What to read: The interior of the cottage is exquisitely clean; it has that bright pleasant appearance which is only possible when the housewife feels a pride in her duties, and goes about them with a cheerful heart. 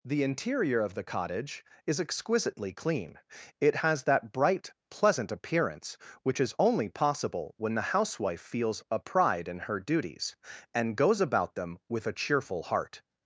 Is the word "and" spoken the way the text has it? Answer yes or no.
yes